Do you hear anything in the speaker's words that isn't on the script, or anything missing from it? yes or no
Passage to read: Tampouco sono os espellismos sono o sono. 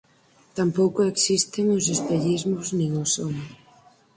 yes